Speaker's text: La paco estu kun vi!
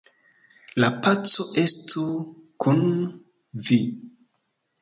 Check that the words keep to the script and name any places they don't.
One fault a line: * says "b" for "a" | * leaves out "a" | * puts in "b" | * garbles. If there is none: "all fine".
all fine